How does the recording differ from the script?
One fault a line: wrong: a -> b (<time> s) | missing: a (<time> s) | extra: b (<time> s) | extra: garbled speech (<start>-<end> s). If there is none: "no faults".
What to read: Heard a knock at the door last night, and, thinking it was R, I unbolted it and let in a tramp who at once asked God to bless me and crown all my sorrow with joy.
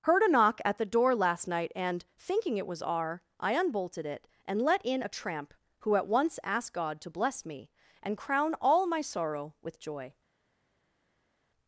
no faults